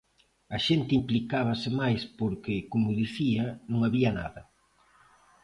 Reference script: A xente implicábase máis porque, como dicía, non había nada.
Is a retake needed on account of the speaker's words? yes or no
no